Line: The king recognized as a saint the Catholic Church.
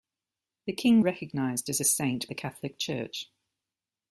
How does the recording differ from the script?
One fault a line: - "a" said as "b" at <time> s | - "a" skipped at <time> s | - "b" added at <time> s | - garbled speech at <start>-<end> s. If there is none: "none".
none